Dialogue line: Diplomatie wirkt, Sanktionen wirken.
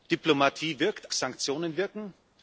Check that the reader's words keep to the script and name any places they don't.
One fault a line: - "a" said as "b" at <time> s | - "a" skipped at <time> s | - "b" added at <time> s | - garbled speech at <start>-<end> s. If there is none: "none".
none